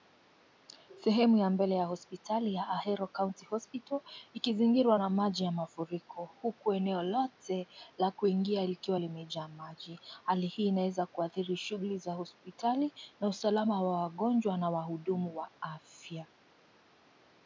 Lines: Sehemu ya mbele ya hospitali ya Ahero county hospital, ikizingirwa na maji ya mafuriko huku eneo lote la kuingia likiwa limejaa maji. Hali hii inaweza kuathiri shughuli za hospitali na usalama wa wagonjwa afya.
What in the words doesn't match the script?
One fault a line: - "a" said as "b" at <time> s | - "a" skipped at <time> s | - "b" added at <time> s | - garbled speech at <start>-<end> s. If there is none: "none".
- "na wahudumu wa" added at 14.6 s